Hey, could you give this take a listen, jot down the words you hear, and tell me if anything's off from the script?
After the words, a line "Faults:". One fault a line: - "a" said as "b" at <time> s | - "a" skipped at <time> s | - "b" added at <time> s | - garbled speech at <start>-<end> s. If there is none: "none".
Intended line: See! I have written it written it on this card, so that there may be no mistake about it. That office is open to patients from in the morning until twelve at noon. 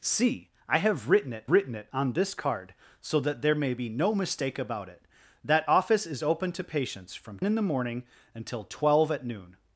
See! I have written it written it on this card, so that there may be no mistake about it. That office is open to patients from in the morning until twelve at noon.
Faults:
none